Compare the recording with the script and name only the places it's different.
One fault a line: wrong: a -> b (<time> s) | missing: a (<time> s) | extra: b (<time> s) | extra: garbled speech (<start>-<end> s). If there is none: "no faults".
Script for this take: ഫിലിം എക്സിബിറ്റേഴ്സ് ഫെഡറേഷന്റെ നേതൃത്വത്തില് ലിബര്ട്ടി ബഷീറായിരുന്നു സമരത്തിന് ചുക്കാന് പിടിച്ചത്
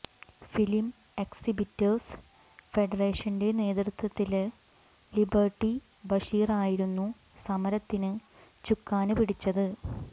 no faults